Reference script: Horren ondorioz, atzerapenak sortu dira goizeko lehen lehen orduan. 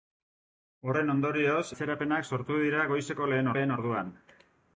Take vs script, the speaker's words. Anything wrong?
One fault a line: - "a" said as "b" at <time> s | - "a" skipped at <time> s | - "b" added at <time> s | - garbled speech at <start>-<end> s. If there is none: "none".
none